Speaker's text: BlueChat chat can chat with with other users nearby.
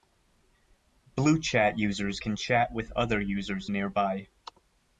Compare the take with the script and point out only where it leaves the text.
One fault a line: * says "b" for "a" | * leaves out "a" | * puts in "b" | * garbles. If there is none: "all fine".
* says "users" for "chat"
* leaves out "with"